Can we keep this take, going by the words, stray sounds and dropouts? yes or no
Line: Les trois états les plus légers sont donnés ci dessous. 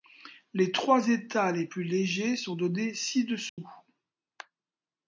no